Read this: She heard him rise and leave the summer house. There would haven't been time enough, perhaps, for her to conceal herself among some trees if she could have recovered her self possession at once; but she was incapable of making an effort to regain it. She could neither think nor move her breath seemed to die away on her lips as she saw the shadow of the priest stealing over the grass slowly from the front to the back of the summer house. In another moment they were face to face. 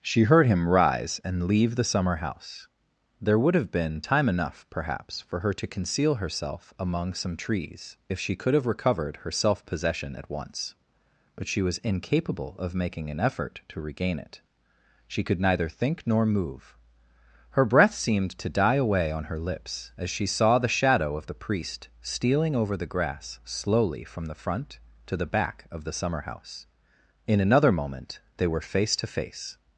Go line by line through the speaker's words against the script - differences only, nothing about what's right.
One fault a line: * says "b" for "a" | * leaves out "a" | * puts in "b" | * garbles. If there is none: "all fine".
* says "have" for "haven't"